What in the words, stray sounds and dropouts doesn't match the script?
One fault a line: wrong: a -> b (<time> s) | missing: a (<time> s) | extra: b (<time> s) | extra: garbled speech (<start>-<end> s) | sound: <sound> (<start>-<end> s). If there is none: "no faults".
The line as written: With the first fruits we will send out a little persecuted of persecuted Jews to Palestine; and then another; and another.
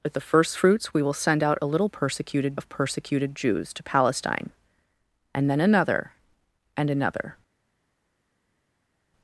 no faults